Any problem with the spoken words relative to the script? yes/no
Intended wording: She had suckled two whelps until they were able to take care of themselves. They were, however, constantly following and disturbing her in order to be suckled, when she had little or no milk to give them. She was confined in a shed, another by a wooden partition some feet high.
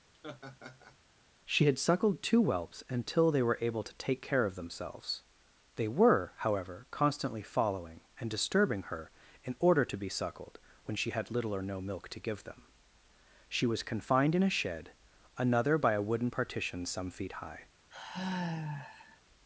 no